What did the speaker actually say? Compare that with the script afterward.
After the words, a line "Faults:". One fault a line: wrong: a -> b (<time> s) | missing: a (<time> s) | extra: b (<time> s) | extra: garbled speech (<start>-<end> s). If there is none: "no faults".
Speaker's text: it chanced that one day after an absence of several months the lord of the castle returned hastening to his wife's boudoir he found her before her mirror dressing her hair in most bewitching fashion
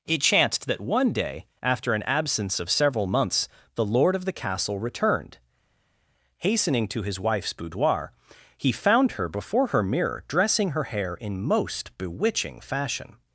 it chanced that one day after an absence of several months the lord of the castle returned hastening to his wife's boudoir he found her before her mirror dressing her hair in most bewitching fashion
Faults:
no faults